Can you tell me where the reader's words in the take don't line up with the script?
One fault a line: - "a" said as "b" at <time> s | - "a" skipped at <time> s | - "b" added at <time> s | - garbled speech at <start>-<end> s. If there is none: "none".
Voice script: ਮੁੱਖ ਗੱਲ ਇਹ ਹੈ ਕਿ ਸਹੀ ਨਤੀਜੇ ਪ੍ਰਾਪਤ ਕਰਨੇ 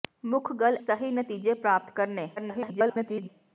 - "ਇਹ ਹੈ ਕਿ" skipped at 0.8 s
- garbled speech at 2.4-3.3 s